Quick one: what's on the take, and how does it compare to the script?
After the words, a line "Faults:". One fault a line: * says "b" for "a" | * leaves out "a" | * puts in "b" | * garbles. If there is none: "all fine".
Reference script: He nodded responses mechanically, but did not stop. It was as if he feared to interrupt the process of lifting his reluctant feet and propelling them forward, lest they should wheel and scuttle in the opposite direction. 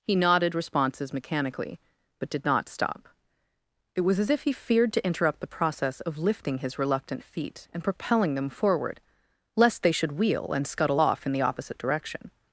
He nodded responses mechanically, but did not stop. It was as if he feared to interrupt the process of lifting his reluctant feet and propelling them forward, lest they should wheel and scuttle off in the opposite direction.
Faults:
* puts in "off"